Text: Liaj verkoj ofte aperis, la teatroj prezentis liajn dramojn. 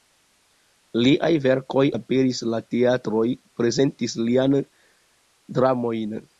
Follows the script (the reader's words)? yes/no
no